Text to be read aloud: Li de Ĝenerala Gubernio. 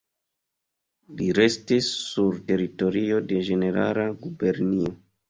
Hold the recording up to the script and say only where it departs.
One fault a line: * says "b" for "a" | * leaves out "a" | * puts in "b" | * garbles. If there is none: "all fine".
* puts in "restis sur teritorio"